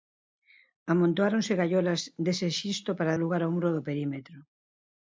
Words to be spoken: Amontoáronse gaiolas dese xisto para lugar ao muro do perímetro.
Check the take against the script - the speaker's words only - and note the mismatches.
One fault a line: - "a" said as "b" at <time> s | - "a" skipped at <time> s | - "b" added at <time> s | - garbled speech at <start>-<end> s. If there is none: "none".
none